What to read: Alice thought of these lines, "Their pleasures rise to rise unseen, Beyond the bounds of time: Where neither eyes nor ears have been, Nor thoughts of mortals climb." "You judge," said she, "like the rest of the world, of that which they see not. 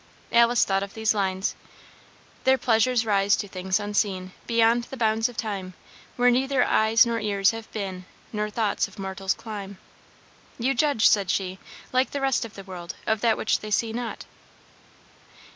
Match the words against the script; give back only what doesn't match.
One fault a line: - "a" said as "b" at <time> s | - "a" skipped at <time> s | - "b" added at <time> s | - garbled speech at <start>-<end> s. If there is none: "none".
- "rise" said as "things" at 3.5 s